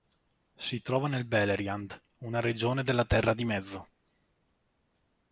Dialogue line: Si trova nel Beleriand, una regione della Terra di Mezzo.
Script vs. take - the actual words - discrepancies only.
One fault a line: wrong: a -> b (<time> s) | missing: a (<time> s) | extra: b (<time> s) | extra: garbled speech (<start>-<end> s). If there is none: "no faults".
no faults